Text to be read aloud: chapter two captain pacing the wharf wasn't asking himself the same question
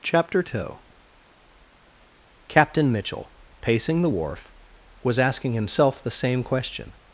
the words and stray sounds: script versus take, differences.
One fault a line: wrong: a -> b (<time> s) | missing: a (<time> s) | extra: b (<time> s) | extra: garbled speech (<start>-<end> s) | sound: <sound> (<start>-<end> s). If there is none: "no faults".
extra: mitchell (2.9 s)
wrong: wasn't -> was (5.0 s)